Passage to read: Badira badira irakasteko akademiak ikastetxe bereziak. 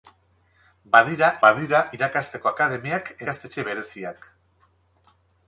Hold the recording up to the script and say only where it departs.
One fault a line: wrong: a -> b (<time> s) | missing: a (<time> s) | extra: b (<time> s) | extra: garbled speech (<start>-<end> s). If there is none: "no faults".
no faults